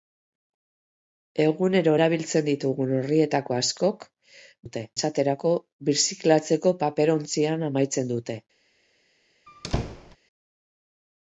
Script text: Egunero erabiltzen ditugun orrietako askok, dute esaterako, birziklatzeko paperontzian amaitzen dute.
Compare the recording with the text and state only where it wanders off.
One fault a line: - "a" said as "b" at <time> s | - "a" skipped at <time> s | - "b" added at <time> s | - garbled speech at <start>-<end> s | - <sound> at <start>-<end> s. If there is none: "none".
- squeak at 9.5-10.2 s